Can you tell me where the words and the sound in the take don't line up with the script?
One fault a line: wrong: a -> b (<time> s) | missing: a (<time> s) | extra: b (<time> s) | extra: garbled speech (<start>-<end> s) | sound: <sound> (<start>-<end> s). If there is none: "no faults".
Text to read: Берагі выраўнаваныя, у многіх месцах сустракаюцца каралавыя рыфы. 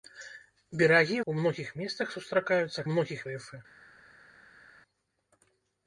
missing: выраўнаваныя (1.2 s)
wrong: каралавыя -> многіх (2.9 s)